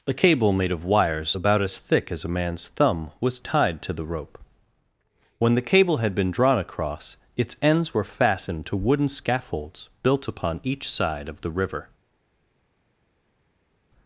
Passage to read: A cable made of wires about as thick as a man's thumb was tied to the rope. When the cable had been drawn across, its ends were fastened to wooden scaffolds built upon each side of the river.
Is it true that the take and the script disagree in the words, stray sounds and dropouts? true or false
false